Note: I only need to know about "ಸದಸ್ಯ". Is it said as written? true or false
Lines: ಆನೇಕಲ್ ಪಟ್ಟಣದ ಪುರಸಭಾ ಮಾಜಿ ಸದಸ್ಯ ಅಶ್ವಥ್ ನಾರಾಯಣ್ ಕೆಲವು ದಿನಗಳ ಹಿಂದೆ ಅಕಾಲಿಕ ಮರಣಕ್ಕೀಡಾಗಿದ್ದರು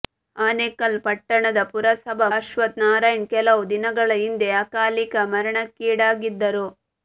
false